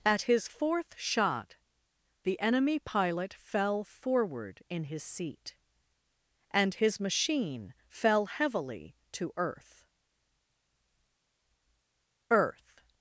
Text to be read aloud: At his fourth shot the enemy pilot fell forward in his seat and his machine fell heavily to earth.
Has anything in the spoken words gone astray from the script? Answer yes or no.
yes